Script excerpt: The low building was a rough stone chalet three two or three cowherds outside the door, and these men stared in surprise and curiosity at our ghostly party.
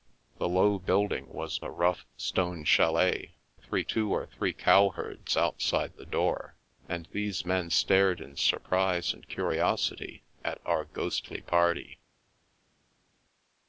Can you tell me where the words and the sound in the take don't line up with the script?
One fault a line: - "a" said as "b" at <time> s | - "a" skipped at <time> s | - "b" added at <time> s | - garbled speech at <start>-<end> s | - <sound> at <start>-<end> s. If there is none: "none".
none